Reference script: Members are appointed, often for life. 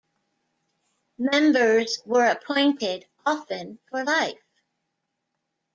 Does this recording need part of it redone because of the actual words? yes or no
yes